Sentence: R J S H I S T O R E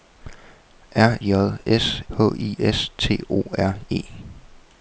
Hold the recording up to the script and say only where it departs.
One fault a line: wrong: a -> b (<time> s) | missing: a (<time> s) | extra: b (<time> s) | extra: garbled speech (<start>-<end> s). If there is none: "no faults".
no faults